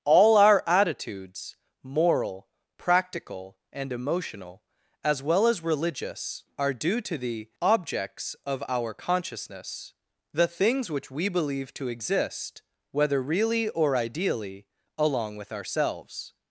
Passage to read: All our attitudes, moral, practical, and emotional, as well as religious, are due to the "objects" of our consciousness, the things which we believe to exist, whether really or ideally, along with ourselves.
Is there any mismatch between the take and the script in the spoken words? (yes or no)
no